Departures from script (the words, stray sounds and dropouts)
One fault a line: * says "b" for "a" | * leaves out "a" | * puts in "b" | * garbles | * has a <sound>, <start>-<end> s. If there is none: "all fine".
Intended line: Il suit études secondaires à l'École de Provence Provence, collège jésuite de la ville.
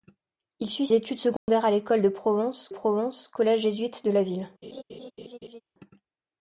* has a dropout, 1.4-1.5 s
* has a laugh, 4.6-5.6 s